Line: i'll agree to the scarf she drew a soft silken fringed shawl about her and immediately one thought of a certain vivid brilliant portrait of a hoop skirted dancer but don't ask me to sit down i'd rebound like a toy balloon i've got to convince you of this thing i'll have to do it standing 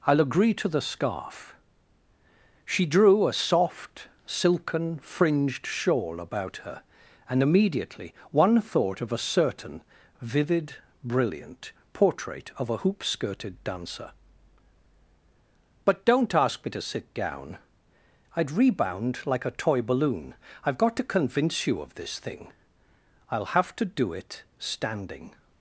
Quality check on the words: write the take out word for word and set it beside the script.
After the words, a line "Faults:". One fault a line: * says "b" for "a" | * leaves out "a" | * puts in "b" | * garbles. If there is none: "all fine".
i'll agree to the scarf she drew a soft silken fringed shawl about her and immediately one thought of a certain vivid brilliant portrait of a hoop skirted dancer but don't ask me to sit down i'd rebound like a toy balloon i've got to convince you of this thing i'll have to do it standing
Faults:
all fine